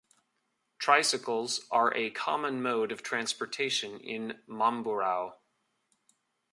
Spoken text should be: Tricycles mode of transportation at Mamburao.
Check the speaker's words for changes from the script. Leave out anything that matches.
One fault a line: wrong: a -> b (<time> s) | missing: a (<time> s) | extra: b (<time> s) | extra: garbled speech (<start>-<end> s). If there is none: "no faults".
extra: are a common (1.7 s)
wrong: at -> in (4.0 s)